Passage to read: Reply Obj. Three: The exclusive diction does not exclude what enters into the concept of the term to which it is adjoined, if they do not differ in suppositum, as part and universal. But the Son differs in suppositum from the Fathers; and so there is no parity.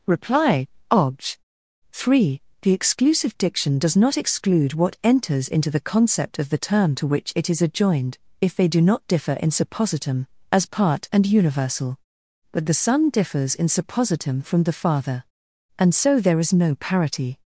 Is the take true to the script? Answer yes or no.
no